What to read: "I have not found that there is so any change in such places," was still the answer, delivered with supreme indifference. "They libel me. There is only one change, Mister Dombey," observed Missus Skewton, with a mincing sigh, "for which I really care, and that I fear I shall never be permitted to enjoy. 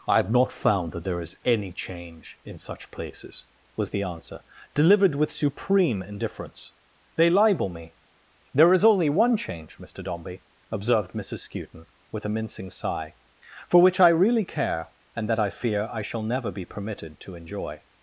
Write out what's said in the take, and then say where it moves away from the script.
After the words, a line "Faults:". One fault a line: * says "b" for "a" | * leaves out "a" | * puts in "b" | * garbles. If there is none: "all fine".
"I have not found that there is any change in such places," was the answer, delivered with supreme indifference. "They libel me. There is only one change, Mister Dombey," observed Missus Skewton, with a mincing sigh, "for which I really care, and that I fear I shall never be permitted to enjoy.
Faults:
* leaves out "so"
* leaves out "still"